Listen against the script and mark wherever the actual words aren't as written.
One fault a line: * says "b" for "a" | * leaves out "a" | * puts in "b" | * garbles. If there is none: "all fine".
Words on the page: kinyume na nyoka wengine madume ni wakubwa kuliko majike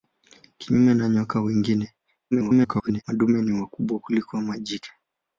* garbles